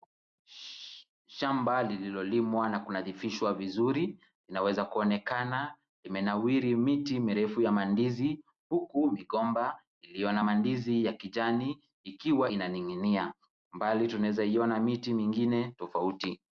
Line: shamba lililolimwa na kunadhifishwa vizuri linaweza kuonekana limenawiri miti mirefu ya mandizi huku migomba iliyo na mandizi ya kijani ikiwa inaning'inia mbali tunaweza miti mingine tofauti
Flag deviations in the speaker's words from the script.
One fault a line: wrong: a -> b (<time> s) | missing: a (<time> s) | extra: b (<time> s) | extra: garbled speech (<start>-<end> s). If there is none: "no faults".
extra: iona (14.4 s)